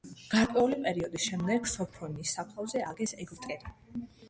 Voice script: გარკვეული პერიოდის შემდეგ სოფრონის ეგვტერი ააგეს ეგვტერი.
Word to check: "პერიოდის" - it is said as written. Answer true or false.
true